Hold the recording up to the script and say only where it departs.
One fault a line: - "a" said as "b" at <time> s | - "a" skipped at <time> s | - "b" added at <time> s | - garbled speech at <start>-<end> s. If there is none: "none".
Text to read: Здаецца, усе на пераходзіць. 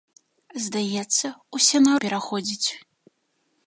none